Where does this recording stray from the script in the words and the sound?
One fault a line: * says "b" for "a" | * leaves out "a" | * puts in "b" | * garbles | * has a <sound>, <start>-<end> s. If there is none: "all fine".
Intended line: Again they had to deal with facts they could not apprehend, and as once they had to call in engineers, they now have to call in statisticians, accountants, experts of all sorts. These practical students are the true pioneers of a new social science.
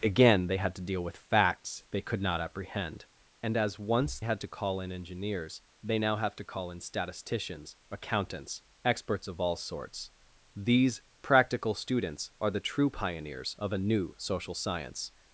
* leaves out "they"